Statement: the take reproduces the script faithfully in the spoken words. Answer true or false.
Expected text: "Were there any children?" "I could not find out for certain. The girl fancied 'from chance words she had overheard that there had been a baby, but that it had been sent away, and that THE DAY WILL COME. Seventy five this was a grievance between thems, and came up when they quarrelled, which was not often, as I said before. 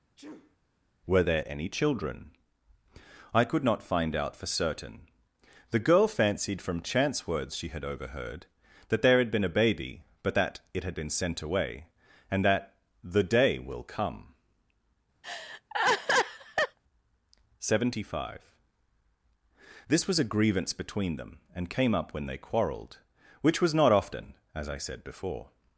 false